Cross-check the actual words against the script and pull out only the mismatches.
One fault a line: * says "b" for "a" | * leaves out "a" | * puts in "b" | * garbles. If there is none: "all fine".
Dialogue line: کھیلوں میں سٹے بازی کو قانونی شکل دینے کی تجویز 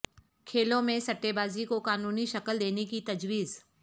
all fine